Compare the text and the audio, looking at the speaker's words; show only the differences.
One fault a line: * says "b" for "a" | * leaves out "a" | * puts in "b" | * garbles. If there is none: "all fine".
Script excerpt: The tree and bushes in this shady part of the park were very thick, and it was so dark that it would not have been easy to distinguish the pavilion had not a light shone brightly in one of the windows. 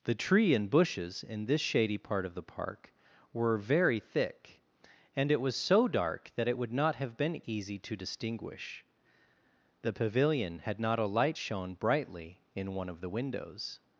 all fine